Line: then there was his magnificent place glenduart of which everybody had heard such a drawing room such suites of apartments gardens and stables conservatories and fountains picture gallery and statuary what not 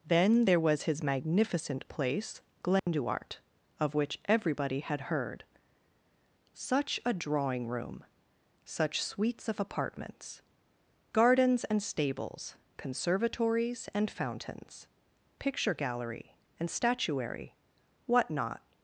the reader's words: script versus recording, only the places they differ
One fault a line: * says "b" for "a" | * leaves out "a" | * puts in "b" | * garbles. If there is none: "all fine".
all fine